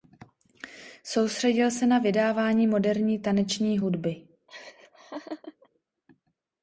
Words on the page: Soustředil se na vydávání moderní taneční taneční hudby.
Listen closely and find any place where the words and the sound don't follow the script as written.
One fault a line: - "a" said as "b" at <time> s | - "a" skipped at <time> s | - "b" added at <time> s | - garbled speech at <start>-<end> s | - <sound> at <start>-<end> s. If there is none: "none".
- "taneční" skipped at 3.8 s
- laugh at 4.5-5.7 s